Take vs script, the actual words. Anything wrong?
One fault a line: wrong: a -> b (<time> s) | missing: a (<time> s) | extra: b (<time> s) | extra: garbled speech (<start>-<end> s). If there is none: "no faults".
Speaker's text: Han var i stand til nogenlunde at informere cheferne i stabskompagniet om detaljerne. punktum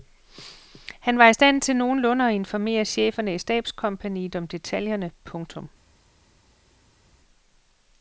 no faults